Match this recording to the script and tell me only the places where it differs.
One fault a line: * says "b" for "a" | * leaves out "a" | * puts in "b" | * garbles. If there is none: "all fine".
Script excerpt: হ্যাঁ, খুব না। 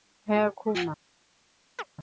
all fine